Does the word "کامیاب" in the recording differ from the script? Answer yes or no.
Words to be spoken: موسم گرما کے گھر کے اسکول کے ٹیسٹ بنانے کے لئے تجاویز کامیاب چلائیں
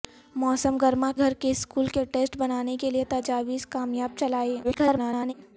no